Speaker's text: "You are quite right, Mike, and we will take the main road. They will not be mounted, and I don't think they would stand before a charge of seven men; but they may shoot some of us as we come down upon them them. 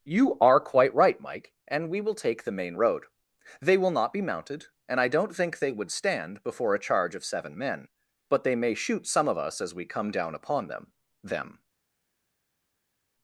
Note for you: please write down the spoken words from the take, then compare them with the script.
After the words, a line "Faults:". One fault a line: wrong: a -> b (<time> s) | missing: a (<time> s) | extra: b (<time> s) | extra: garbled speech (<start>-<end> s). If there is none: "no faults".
"You are quite right, Mike, and we will take the main road. They will not be mounted, and I don't think they would stand before a charge of seven men; but they may shoot some of us as we come down upon them them.
Faults:
no faults